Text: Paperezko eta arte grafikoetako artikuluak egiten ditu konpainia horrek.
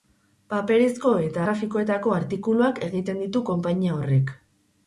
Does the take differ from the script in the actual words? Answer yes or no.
yes